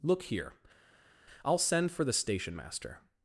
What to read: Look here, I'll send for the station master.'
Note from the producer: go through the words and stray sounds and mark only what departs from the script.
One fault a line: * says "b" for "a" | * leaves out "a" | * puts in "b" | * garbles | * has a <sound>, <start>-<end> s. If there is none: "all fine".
all fine